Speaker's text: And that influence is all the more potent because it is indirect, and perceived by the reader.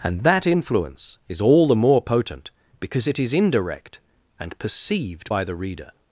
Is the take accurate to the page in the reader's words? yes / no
yes